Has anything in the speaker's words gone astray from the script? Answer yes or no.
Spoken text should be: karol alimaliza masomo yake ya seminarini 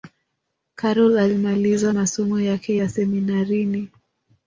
no